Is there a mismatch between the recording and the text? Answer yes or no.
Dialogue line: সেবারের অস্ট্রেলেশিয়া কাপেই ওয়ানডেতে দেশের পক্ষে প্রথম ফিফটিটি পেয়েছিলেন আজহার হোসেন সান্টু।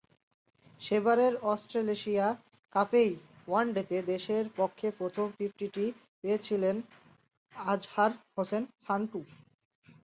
no